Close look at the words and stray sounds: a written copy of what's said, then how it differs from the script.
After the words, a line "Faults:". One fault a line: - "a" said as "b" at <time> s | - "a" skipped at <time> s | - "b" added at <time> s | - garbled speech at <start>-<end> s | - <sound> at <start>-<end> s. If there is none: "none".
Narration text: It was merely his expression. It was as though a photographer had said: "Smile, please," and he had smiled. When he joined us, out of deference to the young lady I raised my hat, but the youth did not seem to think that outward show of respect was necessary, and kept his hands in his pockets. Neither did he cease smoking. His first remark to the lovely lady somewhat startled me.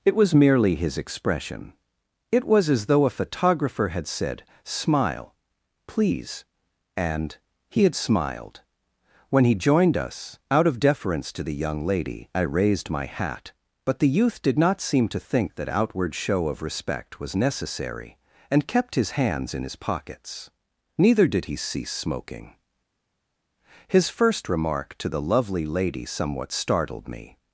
It was merely his expression. It was as though a photographer had said: "Smile, please," and he had smiled. When he joined us, out of deference to the young lady I raised my hat, but the youth did not seem to think that outward show of respect was necessary, and kept his hands in his pockets. Neither did he cease smoking. His first remark to the lovely lady somewhat startled me.
Faults:
none